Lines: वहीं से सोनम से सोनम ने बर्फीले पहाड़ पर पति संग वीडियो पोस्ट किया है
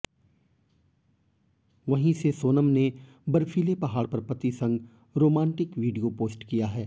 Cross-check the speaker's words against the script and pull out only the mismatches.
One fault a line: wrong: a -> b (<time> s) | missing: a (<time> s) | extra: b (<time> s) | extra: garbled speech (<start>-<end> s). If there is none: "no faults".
missing: से सोनम (2.7 s)
extra: रोमांटिक (5.2 s)